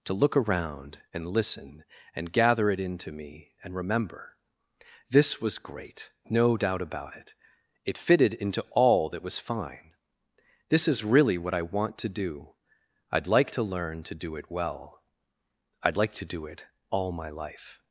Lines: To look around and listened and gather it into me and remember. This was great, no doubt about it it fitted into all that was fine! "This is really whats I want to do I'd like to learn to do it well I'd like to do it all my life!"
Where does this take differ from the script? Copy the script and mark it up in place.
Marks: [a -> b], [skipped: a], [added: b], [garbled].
To look around and [listened -> listen] and gather it into me and remember. This was great, no doubt about it it fitted into all that was fine! "This is really [whats -> what] I want to do I'd like to learn to do it well I'd like to do it all my life!"